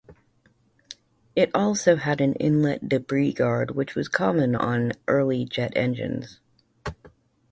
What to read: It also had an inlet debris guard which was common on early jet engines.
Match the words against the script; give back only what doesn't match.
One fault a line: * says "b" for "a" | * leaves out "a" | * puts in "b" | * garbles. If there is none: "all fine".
all fine